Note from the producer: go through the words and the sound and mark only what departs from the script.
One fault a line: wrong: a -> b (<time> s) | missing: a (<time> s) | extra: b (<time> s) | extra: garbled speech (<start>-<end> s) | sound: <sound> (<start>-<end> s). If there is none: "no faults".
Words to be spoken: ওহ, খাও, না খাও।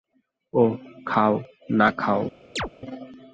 sound: chirp (2.6-2.7 s)